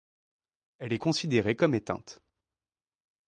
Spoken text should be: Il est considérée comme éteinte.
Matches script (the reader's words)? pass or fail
fail